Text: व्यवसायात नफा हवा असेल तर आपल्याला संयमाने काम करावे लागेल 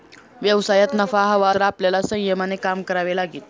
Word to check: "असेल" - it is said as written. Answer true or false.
false